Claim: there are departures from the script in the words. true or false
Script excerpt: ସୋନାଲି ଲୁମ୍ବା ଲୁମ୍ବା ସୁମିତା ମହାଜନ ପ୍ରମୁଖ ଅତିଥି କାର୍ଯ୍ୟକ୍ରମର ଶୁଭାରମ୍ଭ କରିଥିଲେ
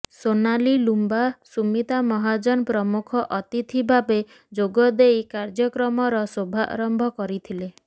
true